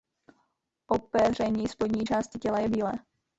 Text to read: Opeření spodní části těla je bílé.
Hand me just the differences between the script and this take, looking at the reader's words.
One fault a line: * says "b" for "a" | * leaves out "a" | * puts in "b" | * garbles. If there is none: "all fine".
all fine